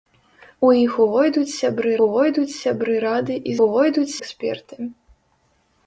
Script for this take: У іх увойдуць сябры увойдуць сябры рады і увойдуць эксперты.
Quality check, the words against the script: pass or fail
pass